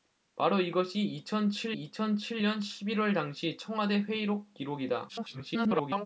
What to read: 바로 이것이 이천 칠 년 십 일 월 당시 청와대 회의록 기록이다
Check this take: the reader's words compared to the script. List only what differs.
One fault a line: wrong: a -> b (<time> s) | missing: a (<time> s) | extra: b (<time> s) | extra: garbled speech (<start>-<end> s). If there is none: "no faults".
extra: 이천 칠 (1.7 s)
extra: garbled speech (5.1-6.1 s)